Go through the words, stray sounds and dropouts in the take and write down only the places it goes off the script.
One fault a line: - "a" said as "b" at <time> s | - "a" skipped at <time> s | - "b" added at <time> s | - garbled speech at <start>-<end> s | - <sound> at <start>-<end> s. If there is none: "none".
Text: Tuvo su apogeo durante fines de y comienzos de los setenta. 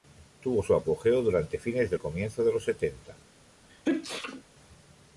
- sneeze at 3.7-4.4 s